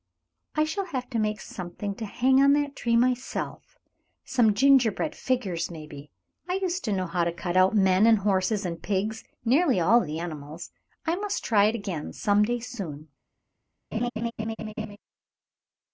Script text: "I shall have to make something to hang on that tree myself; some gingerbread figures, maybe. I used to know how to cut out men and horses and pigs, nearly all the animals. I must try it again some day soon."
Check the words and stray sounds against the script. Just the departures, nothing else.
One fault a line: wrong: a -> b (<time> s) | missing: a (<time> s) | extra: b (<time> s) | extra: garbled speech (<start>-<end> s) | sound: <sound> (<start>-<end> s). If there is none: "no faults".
sound: laugh (13.9-15.0 s)